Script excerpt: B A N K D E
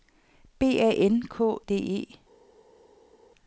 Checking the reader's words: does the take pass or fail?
pass